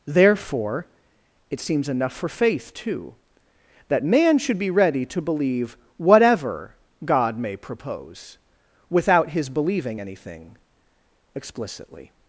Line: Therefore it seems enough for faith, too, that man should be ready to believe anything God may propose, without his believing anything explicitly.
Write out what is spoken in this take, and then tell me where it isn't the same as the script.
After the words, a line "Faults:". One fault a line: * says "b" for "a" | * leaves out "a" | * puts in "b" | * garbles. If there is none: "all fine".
Therefore it seems enough for faith, too, that man should be ready to believe whatever God may propose, without his believing anything explicitly.
Faults:
* says "whatever" for "anything"